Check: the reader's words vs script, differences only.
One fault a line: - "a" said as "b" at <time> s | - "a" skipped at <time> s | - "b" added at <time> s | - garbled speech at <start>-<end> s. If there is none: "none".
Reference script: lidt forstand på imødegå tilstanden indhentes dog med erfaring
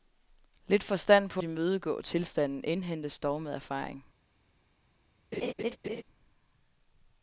none